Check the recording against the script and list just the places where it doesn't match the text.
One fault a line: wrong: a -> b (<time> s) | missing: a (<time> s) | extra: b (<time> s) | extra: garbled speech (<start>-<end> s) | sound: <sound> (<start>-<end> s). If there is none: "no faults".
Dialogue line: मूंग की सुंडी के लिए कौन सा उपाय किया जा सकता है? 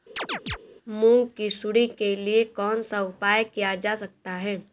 sound: chirp (0.2-0.6 s)